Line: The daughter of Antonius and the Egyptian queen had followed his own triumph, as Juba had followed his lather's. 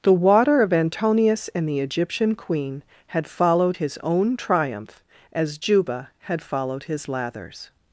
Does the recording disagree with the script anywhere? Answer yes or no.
yes